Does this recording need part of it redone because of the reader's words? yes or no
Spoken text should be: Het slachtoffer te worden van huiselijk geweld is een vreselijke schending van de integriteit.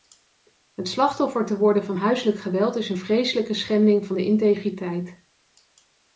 no